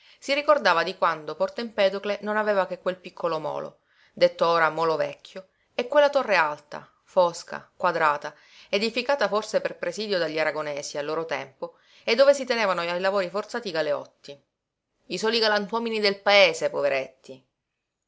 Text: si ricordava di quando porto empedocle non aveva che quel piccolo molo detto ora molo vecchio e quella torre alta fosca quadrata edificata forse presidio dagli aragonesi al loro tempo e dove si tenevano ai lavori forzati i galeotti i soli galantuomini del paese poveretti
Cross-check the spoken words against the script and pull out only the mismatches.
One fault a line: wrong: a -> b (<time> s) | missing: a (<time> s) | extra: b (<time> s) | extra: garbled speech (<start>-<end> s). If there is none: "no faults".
extra: per (9.6 s)